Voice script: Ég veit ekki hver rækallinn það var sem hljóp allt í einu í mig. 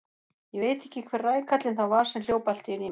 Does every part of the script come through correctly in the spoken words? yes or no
yes